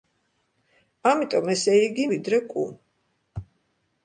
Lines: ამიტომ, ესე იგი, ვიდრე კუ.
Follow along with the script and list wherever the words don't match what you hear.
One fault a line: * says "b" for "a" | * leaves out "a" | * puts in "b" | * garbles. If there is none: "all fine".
all fine